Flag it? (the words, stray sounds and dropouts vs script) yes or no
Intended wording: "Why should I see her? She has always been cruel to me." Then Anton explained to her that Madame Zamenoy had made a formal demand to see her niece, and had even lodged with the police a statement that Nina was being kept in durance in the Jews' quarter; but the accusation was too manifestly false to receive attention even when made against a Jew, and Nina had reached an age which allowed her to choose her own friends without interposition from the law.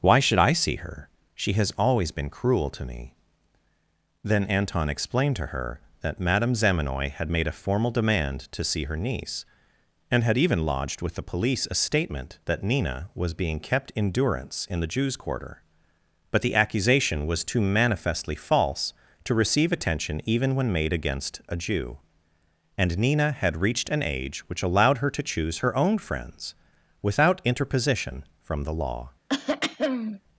yes